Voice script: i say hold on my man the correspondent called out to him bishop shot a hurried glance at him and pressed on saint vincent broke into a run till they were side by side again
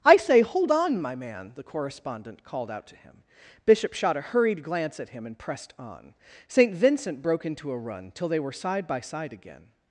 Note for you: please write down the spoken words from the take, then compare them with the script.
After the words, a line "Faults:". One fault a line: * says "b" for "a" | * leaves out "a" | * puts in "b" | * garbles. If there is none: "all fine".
i say hold on my man the correspondent called out to him bishop shot a hurried glance at him and pressed on saint vincent broke into a run till they were side by side again
Faults:
all fine